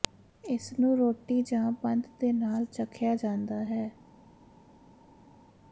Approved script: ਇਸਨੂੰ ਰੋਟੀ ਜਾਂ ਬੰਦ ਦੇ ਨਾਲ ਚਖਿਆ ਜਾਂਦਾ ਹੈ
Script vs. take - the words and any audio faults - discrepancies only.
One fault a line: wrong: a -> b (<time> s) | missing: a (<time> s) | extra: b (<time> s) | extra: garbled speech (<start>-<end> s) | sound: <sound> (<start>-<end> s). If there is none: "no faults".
no faults